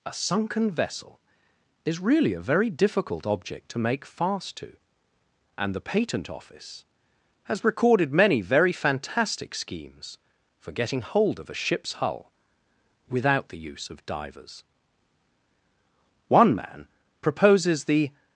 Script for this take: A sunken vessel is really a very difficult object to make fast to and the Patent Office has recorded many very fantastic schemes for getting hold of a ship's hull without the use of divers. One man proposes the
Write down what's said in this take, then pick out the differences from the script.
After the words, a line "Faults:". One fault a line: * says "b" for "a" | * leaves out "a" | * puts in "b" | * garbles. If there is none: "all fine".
A sunken vessel is really a very difficult object to make fast to and the Patent Office has recorded many very fantastic schemes for getting hold of a ship's hull without the use of divers. One man proposes the
Faults:
all fine